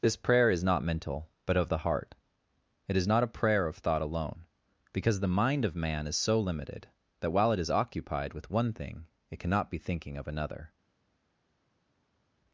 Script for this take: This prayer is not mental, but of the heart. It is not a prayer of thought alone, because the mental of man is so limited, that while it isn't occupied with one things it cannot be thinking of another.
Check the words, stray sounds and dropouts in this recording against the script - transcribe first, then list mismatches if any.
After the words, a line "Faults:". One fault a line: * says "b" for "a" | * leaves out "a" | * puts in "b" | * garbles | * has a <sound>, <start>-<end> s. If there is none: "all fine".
This prayer is not mental, but of the heart. It is not a prayer of thought alone, because the mind of man is so limited, that while it is occupied with one thing it cannot be thinking of another.
Faults:
* says "mind" for "mental"
* says "is" for "isn't"
* says "thing" for "things"